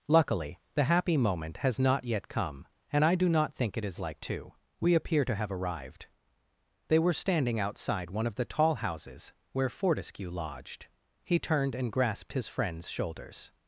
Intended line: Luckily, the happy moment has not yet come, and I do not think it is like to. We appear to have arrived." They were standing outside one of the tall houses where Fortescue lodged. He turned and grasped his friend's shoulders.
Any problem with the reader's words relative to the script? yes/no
no